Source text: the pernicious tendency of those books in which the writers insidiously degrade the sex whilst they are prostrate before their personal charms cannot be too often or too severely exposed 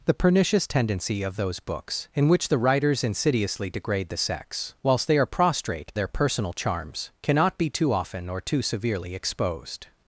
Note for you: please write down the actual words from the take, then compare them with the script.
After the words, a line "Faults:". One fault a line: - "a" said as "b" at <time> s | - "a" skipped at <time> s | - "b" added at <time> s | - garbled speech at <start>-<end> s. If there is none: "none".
the pernicious tendency of those books in which the writers insidiously degrade the sex whilst they are prostrate their personal charms cannot be too often or too severely exposed
Faults:
- "before" skipped at 6.0 s